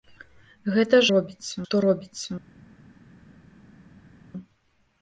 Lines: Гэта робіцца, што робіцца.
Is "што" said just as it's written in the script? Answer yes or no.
yes